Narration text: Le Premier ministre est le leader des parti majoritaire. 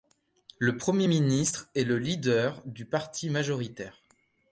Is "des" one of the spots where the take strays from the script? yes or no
yes